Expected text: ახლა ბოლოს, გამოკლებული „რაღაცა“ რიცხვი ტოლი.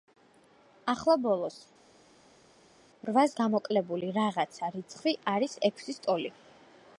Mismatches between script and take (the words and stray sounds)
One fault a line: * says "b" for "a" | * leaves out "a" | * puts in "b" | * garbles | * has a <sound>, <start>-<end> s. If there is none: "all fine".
* puts in "რვას"
* puts in "არის ექვსის"